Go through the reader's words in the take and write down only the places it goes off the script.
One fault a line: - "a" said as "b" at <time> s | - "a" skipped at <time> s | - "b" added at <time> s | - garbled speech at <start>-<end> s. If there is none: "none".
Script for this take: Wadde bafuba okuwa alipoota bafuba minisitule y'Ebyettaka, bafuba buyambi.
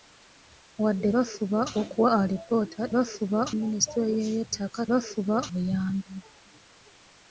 none